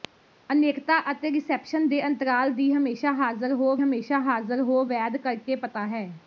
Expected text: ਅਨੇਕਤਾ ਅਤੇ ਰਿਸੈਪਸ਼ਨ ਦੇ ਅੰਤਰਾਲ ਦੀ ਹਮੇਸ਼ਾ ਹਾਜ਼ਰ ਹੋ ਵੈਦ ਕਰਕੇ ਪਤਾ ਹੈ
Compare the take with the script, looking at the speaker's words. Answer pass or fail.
fail